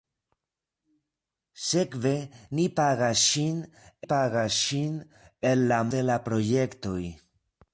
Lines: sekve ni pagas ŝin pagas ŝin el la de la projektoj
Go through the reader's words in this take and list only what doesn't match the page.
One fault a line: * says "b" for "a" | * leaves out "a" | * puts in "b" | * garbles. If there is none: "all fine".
all fine